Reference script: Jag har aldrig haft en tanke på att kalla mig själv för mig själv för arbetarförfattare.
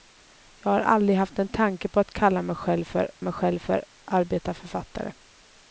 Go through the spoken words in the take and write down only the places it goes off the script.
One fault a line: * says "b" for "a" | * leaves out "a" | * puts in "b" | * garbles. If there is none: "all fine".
all fine